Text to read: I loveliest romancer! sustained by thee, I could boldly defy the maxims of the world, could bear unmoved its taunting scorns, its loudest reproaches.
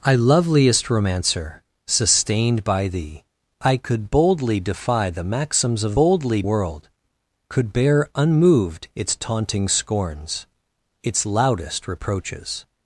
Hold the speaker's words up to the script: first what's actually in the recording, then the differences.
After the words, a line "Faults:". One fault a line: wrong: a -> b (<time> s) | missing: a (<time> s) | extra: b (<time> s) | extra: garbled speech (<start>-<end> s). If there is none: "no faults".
I loveliest romancer! sustained by thee, I could boldly defy the maxims of boldly world, could bear unmoved its taunting scorns, its loudest reproaches.
Faults:
wrong: the -> boldly (5.9 s)